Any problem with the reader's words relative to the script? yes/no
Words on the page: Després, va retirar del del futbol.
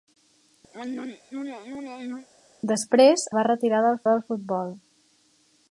no